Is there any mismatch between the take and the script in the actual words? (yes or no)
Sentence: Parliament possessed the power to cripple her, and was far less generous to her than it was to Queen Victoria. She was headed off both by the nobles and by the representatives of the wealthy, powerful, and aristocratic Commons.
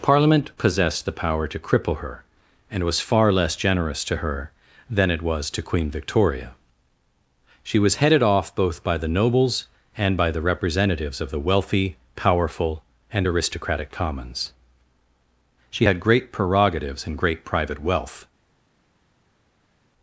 yes